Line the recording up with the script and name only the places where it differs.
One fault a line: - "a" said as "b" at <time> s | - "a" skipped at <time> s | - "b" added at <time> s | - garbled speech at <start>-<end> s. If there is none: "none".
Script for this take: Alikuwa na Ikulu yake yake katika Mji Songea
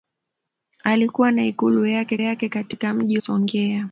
none